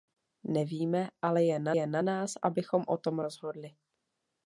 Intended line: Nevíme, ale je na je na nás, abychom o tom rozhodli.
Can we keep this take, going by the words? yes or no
yes